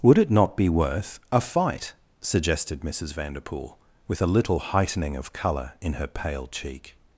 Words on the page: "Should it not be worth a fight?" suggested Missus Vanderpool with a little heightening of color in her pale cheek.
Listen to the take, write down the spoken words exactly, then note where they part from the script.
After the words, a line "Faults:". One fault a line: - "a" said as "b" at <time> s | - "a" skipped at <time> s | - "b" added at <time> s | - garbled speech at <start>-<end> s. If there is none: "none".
"Would it not be worth a fight?" suggested Missus Vanderpool with a little heightening of color in her pale cheek.
Faults:
- "Should" said as "Would" at 0.0 s